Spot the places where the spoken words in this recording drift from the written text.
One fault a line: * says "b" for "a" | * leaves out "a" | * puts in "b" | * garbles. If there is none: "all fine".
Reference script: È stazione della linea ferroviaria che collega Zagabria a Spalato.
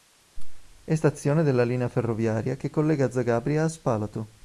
all fine